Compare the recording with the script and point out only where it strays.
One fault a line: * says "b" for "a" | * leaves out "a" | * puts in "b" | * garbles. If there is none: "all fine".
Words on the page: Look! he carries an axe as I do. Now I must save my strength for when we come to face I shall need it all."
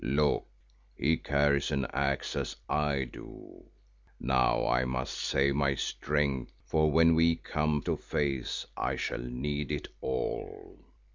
all fine